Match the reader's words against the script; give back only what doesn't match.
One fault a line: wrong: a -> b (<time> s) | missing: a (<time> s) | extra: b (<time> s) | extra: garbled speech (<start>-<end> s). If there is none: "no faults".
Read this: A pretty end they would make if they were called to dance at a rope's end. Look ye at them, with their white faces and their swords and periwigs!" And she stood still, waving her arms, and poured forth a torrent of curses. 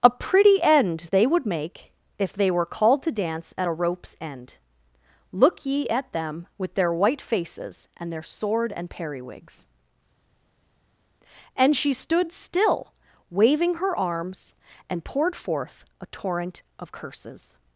wrong: swords -> sword (8.2 s)